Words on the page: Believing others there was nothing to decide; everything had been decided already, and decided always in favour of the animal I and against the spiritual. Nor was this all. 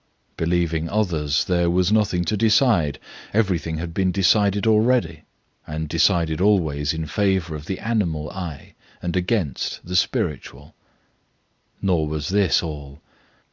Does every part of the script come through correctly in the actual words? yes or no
yes